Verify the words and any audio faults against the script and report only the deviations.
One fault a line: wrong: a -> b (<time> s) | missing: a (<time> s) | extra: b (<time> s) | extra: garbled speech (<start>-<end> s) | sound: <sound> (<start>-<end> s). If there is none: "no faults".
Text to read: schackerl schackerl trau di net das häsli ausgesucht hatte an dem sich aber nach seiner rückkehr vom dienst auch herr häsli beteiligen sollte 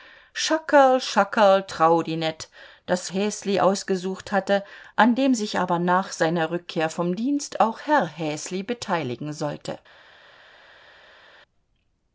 no faults